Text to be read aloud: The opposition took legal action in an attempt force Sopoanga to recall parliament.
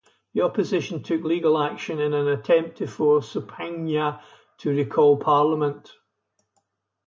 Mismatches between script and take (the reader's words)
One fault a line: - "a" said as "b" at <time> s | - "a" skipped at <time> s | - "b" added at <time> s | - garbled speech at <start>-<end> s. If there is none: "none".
- "to" added at 2.8 s